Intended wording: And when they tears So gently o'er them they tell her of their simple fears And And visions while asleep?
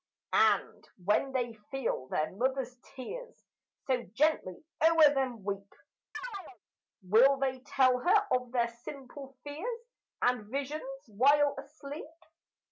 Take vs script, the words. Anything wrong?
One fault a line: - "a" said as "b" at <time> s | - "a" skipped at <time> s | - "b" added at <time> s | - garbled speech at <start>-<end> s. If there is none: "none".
- "feel their mother's" added at 1.7 s
- "weep Will" added at 5.4 s
- "And" skipped at 10.5 s